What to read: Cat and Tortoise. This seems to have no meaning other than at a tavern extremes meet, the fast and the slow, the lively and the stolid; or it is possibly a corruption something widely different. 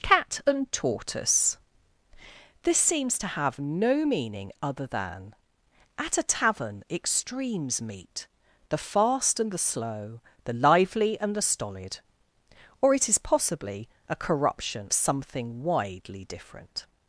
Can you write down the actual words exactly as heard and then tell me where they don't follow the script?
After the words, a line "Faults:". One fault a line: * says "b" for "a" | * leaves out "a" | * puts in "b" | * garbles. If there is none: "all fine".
Cat and Tortoise. This seems to have no meaning other than at a tavern extremes meet, the fast and the slow, the lively and the stolid; or it is possibly a corruption something widely different.
Faults:
all fine